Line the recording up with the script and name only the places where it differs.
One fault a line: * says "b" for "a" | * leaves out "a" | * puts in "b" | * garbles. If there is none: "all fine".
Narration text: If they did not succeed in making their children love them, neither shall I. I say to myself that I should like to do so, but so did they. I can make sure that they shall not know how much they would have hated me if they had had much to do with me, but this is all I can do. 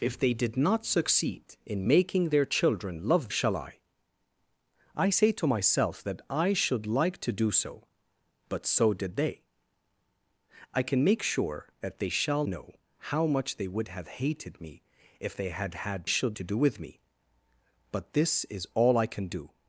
* leaves out "them neither"
* leaves out "not"
* says "should" for "much"